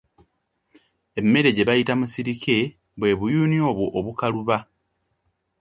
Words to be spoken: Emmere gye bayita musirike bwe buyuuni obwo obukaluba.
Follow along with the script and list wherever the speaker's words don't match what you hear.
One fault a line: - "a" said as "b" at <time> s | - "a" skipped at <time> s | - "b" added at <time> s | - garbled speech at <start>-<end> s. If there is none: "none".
none